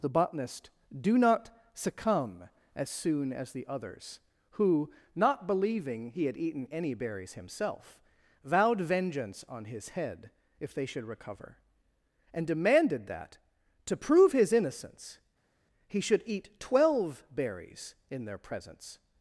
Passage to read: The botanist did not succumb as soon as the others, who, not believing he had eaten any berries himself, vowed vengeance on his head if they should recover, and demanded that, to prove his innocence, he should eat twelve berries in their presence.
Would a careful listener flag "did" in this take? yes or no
yes